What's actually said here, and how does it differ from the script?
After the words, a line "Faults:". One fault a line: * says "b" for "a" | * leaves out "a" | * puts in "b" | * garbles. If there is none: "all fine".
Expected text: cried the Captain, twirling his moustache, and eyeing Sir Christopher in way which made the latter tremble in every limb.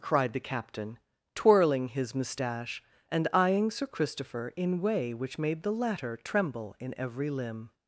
cried the Captain, twirling his moustache, and eyeing Sir Christopher in way which made the latter tremble in every limb.
Faults:
all fine